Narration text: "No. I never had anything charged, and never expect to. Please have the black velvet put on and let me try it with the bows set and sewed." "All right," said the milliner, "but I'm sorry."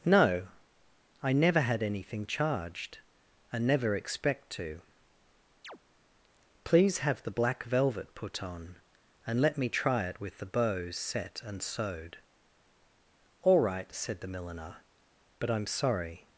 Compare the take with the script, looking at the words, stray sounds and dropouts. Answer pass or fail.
fail